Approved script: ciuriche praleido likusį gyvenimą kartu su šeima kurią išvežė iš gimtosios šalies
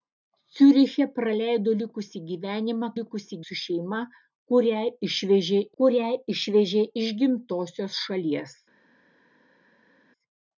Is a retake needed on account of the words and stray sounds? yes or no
yes